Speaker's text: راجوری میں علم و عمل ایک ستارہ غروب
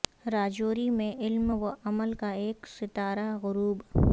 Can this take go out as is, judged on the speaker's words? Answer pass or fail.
fail